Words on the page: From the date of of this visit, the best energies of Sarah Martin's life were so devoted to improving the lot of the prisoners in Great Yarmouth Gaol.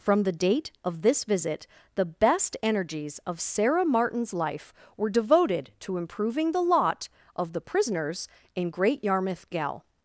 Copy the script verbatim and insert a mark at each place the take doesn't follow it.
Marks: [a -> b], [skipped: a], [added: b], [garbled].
From the date of [skipped: of] this visit, the best energies of Sarah Martin's life were [skipped: so] devoted to improving the lot of the prisoners in Great Yarmouth Gaol.